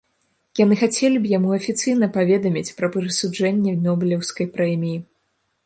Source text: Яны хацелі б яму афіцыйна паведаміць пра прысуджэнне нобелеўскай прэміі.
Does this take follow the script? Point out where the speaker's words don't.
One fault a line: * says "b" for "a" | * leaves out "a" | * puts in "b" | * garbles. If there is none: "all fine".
all fine